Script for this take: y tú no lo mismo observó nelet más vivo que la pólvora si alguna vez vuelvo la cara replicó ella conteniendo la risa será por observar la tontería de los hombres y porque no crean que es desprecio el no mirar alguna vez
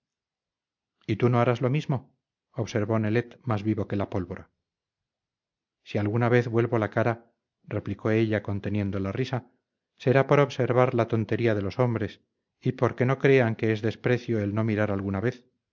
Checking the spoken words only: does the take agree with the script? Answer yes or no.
no